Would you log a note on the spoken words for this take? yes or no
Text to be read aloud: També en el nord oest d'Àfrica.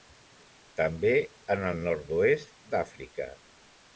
no